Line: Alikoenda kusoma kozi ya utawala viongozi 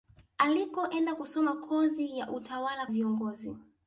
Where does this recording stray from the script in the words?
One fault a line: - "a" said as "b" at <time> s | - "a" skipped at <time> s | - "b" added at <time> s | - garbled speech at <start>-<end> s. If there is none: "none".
none